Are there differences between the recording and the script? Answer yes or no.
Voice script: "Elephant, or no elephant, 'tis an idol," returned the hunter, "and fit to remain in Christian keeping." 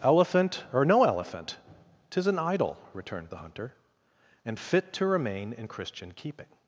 no